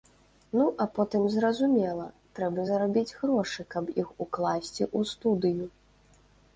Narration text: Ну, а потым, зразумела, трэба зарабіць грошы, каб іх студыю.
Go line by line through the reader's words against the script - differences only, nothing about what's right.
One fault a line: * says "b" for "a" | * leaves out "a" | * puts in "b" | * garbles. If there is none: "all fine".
* puts in "укласці ў"